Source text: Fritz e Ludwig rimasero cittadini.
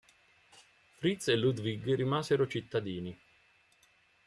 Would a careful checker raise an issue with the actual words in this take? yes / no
no